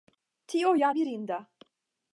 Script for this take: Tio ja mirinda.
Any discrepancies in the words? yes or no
no